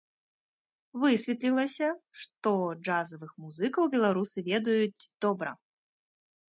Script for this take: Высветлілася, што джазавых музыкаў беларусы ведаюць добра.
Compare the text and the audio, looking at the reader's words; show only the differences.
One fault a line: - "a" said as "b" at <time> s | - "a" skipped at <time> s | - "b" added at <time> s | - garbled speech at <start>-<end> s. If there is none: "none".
none